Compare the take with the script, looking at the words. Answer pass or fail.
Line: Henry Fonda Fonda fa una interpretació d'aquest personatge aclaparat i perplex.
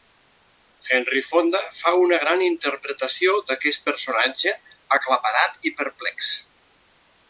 fail